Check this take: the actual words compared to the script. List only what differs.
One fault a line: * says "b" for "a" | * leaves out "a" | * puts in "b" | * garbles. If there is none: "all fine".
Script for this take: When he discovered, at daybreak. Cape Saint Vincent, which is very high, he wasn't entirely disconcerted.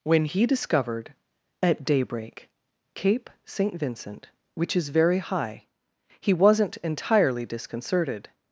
all fine